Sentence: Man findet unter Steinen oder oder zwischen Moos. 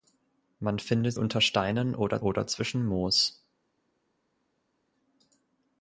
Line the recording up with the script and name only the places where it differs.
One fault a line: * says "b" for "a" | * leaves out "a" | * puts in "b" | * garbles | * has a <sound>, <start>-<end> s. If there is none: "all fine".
all fine